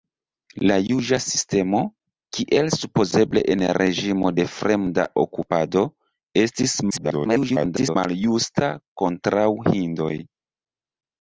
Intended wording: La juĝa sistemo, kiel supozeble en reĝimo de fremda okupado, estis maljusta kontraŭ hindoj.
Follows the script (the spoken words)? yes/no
no